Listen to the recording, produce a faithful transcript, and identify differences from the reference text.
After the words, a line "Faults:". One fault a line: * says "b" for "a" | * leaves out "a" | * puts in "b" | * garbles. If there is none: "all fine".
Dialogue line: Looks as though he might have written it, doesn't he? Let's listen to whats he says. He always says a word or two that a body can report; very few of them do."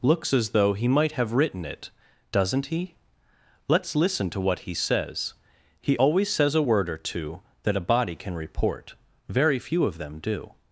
Looks as though he might have written it, doesn't he? Let's listen to what he says. He always says a word or two that a body can report; very few of them do."
Faults:
* says "what" for "whats"